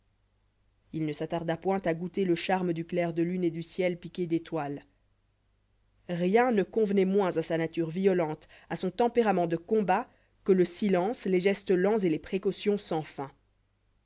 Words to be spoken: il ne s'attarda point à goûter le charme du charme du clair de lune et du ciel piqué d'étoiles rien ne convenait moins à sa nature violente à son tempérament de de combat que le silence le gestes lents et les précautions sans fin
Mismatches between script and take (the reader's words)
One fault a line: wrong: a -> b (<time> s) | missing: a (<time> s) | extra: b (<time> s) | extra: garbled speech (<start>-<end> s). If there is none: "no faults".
missing: charme du (2.9 s)
missing: de (9.6 s)
wrong: le -> les (11.3 s)